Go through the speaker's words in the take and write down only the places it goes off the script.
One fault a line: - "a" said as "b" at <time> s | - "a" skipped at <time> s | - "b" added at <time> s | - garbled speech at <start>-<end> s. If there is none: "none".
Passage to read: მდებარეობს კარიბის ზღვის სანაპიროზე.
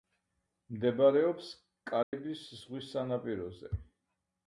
none